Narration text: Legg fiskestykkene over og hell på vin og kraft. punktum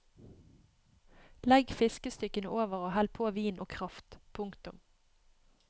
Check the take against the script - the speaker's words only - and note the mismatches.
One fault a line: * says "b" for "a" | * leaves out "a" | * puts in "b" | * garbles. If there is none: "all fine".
all fine